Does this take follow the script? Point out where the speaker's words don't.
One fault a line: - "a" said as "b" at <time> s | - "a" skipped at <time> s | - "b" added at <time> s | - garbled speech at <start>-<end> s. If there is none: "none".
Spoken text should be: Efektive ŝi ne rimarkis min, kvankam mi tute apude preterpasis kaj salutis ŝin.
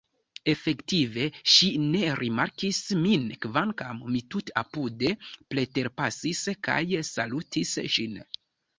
none